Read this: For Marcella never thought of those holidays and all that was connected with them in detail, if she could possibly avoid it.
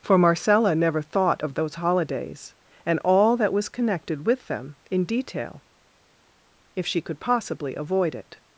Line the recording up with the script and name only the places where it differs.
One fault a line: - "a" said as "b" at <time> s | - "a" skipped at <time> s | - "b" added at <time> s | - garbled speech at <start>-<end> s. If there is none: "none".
none